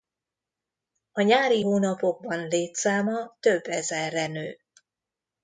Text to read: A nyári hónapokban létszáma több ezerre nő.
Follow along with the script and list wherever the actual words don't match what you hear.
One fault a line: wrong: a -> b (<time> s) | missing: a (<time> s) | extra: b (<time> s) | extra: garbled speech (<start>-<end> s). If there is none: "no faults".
no faults